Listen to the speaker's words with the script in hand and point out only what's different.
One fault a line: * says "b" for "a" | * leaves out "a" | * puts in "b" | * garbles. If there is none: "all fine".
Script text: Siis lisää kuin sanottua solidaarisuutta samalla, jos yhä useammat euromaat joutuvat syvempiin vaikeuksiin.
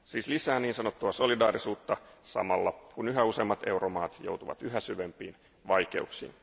* says "niin" for "kuin"
* says "kun" for "jos"
* puts in "yhä"